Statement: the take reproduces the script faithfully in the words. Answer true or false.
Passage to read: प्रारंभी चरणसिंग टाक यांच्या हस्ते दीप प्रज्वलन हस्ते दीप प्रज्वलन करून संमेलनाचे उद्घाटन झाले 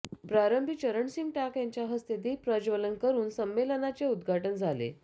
false